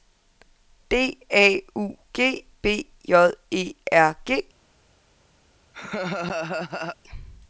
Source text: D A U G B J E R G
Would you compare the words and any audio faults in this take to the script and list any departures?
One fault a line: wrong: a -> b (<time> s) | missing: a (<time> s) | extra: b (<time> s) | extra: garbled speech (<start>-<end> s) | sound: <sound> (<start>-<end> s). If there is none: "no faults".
sound: laugh (5.7-7.0 s)